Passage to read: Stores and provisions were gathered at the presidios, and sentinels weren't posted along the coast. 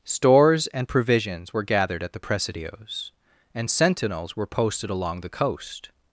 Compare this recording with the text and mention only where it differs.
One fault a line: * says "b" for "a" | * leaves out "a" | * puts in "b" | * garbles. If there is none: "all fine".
* says "were" for "weren't"